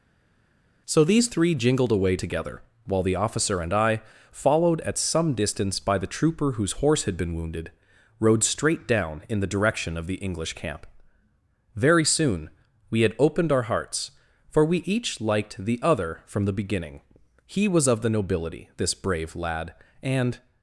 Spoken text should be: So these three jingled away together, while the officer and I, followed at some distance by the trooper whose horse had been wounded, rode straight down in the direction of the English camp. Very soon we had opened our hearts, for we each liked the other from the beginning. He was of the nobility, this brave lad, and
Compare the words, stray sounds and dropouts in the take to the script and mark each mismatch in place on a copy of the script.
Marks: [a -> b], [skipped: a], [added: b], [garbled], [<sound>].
So these three jingled away together, while the officer and I, followed at some distance by the trooper whose horse had been wounded, rode straight down in the direction of the English camp. Very soon we had opened our hearts, for we each liked the other from the beginning. He was of the nobility, this brave lad, and